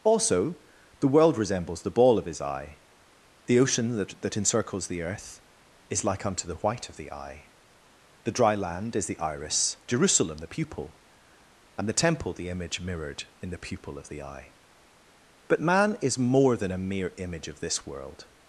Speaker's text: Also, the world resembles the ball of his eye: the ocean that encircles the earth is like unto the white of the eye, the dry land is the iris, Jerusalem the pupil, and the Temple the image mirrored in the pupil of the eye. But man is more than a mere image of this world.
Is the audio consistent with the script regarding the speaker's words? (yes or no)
no